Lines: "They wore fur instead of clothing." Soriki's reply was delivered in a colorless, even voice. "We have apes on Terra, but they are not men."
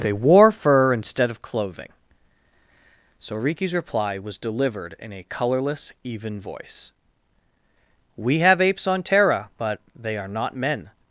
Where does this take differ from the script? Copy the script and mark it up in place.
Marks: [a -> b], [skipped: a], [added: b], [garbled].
"They wore fur instead of clothing." Soriki's reply was delivered in a colorless, even voice. "We have apes on Terra, but they are not men."